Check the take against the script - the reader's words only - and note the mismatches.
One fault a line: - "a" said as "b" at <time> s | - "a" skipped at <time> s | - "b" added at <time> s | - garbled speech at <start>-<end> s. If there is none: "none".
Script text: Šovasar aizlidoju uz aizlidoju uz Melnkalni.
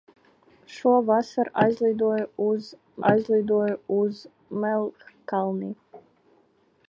none